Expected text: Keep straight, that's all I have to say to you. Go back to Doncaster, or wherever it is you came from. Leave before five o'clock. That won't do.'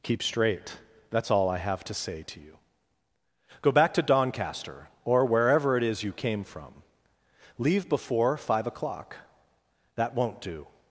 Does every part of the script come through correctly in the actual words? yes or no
yes